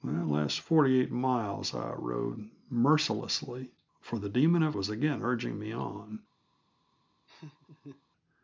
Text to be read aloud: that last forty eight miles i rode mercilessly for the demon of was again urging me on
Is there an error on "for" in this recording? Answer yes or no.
no